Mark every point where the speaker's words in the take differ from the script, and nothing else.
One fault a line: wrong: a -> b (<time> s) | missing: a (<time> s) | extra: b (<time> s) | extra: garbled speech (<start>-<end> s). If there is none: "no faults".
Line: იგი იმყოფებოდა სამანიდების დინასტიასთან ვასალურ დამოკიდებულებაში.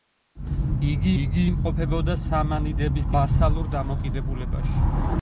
extra: იგი (1.2 s)
missing: დინასტიასთან (3.1 s)